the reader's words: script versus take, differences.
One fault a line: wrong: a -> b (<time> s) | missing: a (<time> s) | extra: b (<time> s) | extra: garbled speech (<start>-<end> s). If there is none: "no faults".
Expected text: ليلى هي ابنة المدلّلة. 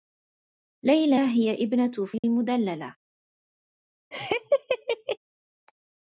no faults